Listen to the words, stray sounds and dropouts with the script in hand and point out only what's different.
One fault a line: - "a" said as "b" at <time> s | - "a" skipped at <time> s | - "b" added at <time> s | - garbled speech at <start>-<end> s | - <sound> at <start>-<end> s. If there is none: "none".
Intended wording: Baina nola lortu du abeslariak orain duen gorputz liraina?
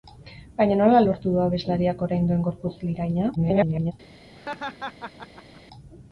- garbled speech at 3.4-3.9 s
- laugh at 4.3-5.6 s